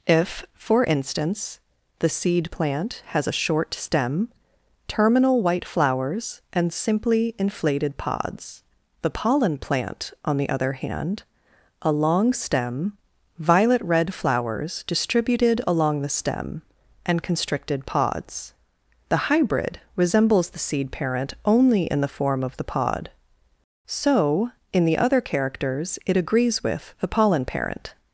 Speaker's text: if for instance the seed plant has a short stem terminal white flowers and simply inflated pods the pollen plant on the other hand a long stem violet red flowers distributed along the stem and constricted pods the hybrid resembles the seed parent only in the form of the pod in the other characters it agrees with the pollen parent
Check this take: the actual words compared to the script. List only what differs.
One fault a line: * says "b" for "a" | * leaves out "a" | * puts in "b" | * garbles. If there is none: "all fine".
* puts in "so"